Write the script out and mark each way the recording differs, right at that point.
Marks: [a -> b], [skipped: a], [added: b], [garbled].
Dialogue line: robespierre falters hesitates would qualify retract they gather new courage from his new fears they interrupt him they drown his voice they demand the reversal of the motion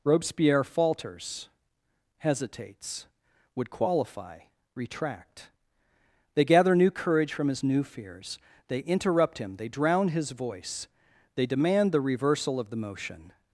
robespierre falters hesitates would qualify retract they gather new courage from his new fears they interrupt him they drown his voice they demand the reversal of the motion